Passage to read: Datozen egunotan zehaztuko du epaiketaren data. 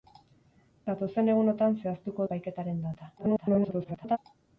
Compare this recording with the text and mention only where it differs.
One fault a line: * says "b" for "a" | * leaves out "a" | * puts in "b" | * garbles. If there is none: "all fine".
* leaves out "du"
* garbles